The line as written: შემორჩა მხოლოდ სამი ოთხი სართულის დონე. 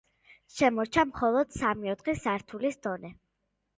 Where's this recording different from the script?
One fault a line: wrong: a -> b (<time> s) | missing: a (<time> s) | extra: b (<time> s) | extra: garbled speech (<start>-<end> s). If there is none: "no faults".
no faults